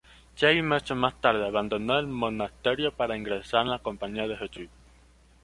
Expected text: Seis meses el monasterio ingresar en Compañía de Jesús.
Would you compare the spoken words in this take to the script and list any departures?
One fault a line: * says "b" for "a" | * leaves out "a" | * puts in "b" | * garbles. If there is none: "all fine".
* puts in "más tarde abandonó"
* puts in "para"
* puts in "la"